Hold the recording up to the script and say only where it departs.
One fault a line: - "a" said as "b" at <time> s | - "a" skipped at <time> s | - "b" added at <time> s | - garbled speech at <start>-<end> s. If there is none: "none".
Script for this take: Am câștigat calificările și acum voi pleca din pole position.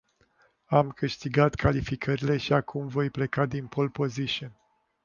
none